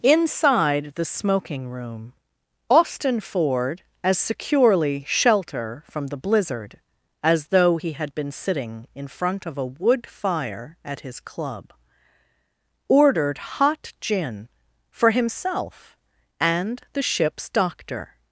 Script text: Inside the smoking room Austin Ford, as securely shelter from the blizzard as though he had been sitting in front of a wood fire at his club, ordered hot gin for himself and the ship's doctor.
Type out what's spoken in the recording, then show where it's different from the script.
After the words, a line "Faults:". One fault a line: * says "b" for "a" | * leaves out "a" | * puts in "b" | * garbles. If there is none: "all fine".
Inside the smoking room Austin Ford, as securely shelter from the blizzard as though he had been sitting in front of a wood fire at his club, ordered hot gin for himself and the ship's doctor.
Faults:
all fine